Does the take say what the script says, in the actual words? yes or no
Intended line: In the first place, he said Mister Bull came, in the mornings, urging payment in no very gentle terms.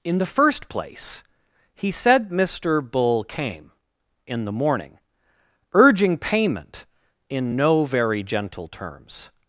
no